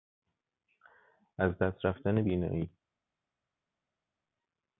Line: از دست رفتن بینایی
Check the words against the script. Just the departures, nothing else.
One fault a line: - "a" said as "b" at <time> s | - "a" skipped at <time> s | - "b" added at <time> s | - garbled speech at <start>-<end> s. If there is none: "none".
none